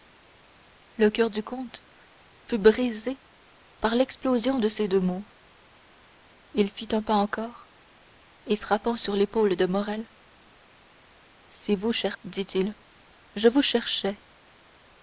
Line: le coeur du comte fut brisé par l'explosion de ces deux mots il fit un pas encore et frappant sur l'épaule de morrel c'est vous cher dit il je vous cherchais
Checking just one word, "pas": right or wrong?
right